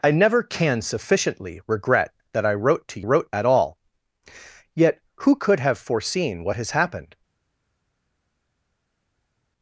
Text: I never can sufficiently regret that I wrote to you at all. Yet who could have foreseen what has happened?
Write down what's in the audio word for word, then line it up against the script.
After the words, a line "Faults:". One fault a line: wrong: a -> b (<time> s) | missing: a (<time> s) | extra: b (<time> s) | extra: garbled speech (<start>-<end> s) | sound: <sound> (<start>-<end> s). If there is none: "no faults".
I never can sufficiently regret that I wrote to wrote at all. Yet who could have foreseen what has happened?
Faults:
wrong: you -> wrote (3.0 s)